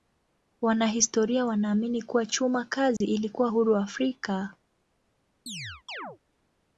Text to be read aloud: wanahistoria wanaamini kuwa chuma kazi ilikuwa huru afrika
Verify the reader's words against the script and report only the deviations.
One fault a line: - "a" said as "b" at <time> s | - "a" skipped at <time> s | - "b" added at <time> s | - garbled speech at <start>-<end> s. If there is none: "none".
none